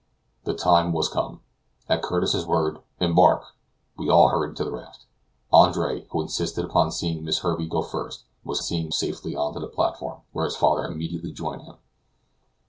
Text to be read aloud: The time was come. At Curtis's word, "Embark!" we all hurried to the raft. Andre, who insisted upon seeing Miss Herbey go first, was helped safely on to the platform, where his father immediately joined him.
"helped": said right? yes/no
no